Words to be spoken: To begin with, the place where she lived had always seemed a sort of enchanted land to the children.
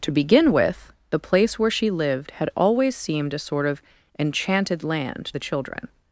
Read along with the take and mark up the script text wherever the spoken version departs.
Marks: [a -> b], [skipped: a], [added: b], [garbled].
To begin with, the place where she lived had always seemed a sort of enchanted land [skipped: to] the children.